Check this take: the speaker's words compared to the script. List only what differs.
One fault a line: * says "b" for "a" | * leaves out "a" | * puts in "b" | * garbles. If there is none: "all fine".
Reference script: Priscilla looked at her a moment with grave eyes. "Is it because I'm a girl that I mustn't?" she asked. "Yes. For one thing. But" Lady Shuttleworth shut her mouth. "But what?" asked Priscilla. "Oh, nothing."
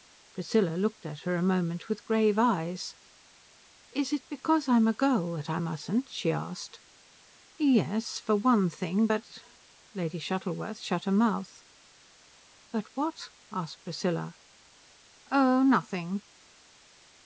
all fine